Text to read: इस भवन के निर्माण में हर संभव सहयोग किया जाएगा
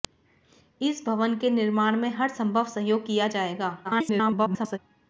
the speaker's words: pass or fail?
fail